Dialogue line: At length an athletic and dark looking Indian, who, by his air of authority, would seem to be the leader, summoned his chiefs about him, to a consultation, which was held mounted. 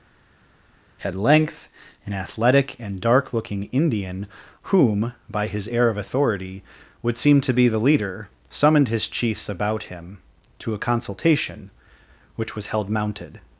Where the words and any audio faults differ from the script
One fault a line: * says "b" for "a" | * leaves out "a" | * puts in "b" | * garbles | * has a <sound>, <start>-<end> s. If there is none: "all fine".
* says "whom" for "who"